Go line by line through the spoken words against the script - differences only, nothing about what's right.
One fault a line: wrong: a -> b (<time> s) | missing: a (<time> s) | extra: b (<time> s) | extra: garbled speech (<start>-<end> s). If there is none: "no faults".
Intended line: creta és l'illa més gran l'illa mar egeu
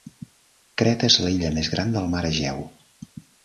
wrong: l'illa -> del (2.0 s)